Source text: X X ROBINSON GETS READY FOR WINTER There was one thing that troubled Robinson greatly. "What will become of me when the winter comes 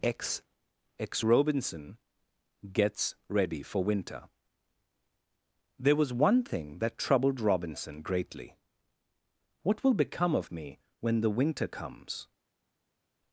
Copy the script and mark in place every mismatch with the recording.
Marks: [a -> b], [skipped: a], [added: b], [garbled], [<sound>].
X X ROBINSON GETS READY FOR WINTER There was one thing that troubled Robinson greatly. "What will become of me when the winter comes